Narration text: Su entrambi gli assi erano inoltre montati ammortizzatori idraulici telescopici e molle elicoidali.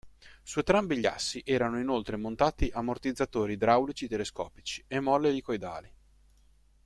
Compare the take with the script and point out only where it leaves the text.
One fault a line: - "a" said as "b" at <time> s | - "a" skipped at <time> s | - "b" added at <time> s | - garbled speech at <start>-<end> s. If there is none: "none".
none